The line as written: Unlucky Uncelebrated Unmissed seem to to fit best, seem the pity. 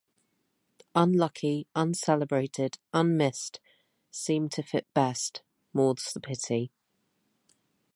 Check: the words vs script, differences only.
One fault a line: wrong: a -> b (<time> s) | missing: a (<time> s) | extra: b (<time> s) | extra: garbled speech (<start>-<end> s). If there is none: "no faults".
missing: to (4.6 s)
wrong: seem -> more's (5.7 s)